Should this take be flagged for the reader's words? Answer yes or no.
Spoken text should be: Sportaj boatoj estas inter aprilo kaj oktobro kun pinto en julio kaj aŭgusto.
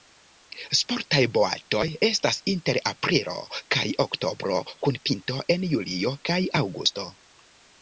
no